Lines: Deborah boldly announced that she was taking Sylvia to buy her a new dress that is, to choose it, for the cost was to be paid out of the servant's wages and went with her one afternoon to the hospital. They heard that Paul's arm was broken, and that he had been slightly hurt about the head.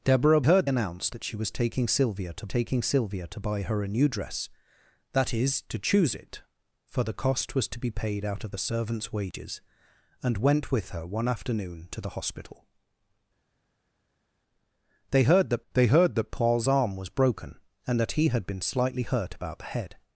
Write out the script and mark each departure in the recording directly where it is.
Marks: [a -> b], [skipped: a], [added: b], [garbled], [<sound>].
Deborah [boldly -> heard] announced that she was taking Sylvia to [added: taking Sylvia to] buy her a new dress that is, to choose it, for the cost was to be paid out of the servant's wages and went with her one afternoon to the hospital. They heard that [added: they heard that] Paul's arm was broken, and that he had been slightly hurt about the head.